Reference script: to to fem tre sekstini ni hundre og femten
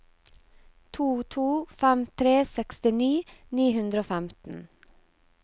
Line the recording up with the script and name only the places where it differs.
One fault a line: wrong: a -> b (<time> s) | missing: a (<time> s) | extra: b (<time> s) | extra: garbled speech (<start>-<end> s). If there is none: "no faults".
no faults